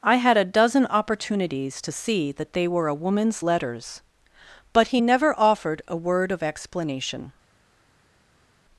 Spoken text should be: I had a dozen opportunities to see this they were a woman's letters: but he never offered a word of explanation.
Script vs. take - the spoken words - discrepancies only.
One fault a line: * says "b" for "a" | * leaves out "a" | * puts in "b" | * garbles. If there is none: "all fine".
* says "that" for "this"